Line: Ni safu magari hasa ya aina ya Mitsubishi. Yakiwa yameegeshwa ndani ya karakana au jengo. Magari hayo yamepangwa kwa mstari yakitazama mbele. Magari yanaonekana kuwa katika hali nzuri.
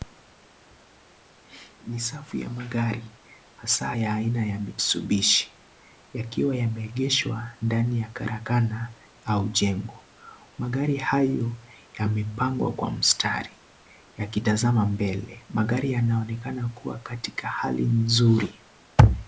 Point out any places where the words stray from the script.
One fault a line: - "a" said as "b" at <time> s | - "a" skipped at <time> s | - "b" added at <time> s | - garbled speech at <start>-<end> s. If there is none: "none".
- "ya" added at 2.4 s